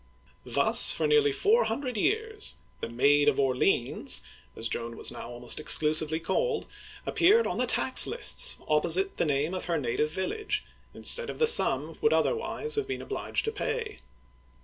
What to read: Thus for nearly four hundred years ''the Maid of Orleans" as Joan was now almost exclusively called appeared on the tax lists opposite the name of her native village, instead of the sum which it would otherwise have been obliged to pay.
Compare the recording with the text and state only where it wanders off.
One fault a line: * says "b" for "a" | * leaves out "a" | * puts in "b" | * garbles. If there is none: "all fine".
* leaves out "which"